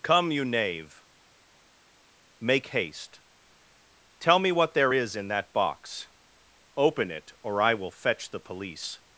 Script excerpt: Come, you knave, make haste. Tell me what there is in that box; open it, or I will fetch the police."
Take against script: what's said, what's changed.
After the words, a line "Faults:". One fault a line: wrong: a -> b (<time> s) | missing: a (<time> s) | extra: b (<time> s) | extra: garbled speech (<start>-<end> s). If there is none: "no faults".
Come, you knave, make haste. Tell me what there is in that box; open it, or I will fetch the police."
Faults:
no faults